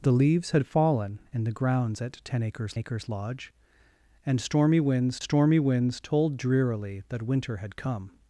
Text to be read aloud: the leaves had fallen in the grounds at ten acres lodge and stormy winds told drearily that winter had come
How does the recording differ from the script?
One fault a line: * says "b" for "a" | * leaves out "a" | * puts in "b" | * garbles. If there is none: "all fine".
* puts in "acres"
* puts in "stormy winds"